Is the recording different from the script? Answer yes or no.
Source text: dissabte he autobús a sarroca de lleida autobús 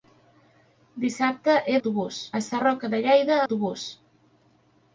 no